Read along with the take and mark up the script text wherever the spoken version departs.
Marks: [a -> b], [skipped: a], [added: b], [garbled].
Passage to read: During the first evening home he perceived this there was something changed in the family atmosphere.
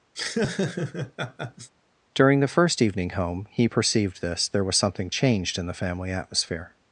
During the first evening home he perceived this there was something changed in the family atmosphere.